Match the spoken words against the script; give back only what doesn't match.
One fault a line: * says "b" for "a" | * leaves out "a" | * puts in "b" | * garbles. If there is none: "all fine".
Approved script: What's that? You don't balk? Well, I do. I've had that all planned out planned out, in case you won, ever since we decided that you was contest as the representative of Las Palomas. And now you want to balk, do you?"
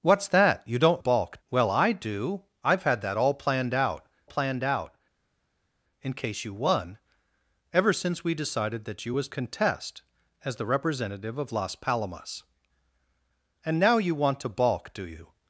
all fine